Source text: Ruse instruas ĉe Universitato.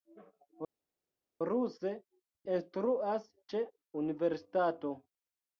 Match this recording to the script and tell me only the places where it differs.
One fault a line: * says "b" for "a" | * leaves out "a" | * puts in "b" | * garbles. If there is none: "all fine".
all fine